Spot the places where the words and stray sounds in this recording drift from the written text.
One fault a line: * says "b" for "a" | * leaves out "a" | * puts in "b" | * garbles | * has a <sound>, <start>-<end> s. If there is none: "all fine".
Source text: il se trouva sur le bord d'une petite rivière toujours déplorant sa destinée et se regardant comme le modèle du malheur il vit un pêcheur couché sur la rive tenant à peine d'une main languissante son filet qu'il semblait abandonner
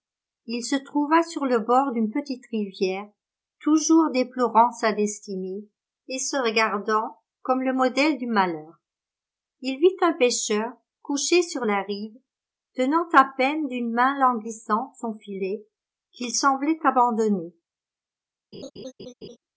* has a laugh, 18.5-19.4 s